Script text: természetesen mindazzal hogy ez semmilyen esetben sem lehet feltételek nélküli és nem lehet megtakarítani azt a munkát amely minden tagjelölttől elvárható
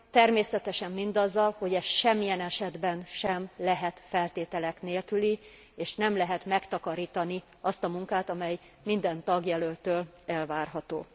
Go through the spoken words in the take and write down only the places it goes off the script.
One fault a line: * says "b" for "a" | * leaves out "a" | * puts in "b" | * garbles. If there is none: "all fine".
all fine